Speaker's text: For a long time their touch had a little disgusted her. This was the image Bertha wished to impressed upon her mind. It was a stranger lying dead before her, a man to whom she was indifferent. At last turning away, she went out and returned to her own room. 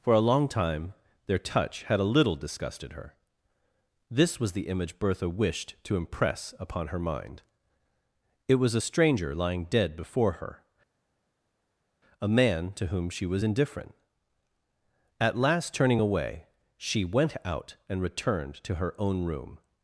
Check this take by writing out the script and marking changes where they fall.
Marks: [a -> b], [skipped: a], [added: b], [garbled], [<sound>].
For a long time their touch had a little disgusted her. This was the image Bertha wished to [impressed -> impress] upon her mind. It was a stranger lying dead before her, a man to whom she was indifferent. At last turning away, she went out and returned to her own room.